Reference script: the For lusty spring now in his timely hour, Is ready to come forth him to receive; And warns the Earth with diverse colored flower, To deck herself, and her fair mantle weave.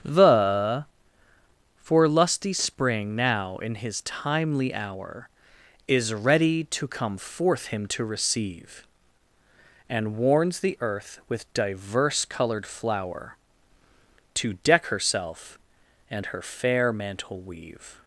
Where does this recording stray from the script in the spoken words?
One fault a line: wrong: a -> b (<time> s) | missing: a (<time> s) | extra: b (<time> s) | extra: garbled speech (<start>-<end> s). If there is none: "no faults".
no faults